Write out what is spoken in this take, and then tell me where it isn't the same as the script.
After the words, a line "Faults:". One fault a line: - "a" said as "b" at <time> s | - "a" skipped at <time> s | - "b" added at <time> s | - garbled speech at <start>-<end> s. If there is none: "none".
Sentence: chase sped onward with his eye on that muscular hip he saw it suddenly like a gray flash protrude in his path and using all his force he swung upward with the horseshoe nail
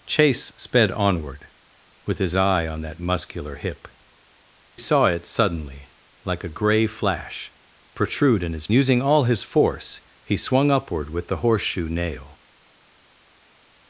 chase sped onward with his eye on that muscular hip saw it suddenly like a gray flash protrude in his using all his force he swung upward with the horseshoe nail
Faults:
- "he" skipped at 3.9 s
- "path and" skipped at 8.7 s